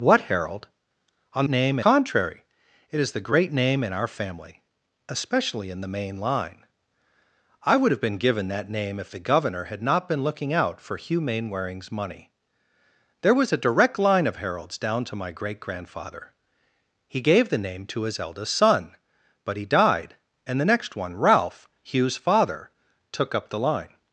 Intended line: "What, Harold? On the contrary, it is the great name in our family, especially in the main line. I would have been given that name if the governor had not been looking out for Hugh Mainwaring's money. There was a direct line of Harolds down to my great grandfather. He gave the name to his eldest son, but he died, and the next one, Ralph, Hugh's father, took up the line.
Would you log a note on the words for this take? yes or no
yes